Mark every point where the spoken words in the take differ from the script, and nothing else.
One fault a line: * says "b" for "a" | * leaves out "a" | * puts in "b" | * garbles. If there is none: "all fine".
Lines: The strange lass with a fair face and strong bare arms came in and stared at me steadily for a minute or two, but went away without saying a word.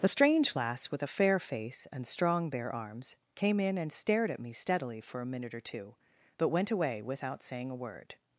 all fine